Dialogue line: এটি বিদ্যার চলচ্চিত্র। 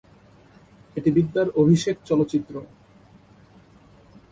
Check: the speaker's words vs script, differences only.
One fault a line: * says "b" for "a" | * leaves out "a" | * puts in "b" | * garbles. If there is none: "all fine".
* puts in "অভিষেক"